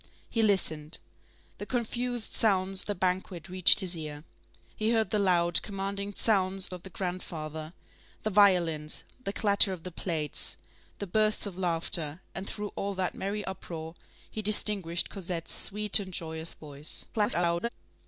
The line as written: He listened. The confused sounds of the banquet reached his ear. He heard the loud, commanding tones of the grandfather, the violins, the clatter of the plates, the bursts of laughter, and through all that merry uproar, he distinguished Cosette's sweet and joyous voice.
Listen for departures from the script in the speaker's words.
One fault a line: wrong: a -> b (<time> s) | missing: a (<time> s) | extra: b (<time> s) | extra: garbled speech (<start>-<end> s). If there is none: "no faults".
missing: of (2.9 s)
wrong: tones -> sounds (6.2 s)
extra: garbled speech (17.1-17.7 s)